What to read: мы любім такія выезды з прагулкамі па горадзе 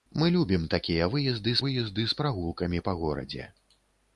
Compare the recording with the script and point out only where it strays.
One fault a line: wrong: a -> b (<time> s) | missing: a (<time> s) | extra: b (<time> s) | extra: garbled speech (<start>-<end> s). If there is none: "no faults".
extra: выезды (1.7 s)